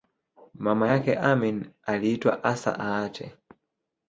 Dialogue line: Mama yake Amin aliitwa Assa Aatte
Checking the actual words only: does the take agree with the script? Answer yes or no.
yes